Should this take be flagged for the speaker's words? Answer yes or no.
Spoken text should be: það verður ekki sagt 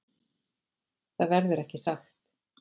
no